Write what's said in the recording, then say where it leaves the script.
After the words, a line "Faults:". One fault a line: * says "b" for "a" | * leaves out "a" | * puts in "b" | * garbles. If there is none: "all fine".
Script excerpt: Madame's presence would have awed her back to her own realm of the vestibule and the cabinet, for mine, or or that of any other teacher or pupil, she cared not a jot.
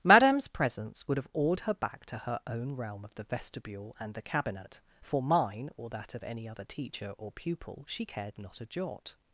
Madame's presence would have awed her back to her own realm of the vestibule and the cabinet, for mine, or that of any other teacher or pupil, she cared not a jot.
Faults:
* leaves out "or"